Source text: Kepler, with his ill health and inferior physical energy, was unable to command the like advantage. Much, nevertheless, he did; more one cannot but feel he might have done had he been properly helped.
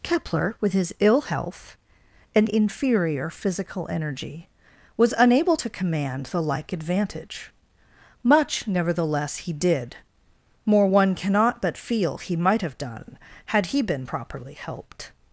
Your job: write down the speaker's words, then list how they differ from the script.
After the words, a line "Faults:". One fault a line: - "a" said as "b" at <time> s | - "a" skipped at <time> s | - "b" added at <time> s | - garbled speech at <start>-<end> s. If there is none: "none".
Kepler, with his ill health and inferior physical energy, was unable to command the like advantage. Much, nevertheless, he did; more one cannot but feel he might have done had he been properly helped.
Faults:
none